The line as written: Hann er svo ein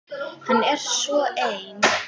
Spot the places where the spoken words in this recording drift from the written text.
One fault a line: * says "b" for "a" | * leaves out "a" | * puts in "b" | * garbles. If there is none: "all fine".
all fine